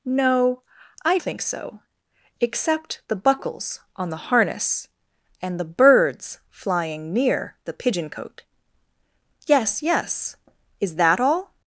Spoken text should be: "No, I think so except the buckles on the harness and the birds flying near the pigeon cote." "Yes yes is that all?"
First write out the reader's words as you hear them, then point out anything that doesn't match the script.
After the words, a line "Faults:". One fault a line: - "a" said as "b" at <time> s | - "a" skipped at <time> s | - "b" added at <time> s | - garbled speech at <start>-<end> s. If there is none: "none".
"No, I think so except the buckles on the harness and the birds flying near the pigeon cote." "Yes yes is that all?"
Faults:
none